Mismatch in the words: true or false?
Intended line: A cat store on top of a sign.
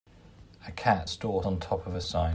false